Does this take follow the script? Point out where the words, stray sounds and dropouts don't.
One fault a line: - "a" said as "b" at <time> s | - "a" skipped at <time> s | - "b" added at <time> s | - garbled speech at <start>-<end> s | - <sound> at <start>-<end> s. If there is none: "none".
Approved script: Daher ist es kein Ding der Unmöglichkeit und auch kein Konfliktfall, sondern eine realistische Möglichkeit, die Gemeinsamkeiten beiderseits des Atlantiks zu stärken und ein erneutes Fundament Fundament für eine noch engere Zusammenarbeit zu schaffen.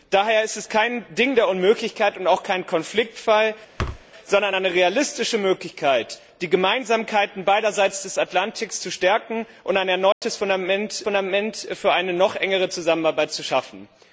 - thud at 3.8-4.0 s
- dropout at 10.1-10.2 s